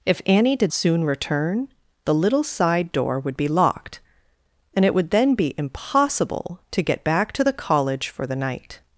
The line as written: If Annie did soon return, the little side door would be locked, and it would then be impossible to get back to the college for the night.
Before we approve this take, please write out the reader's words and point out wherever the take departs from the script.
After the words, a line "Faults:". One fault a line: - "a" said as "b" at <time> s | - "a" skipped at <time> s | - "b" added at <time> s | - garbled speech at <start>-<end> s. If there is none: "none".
If Annie did soon return, the little side door would be locked, and it would then be impossible to get back to the college for the night.
Faults:
none